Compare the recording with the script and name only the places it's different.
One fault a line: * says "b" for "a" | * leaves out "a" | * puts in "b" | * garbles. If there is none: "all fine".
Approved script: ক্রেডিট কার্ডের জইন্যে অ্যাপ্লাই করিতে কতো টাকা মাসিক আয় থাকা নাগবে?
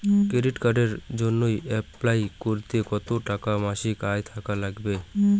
all fine